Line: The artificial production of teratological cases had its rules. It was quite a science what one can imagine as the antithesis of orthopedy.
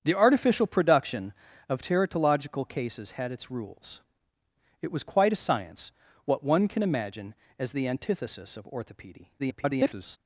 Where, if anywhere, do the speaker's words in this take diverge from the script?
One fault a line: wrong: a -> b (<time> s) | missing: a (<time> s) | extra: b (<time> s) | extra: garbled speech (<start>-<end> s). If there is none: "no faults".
extra: garbled speech (9.4-10.2 s)